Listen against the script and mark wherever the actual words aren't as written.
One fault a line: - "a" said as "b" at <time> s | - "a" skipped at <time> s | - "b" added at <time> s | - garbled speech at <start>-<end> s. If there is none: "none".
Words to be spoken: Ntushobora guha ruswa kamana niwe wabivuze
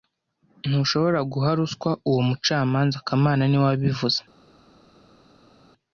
- "uwo mucamanza" added at 2.1 s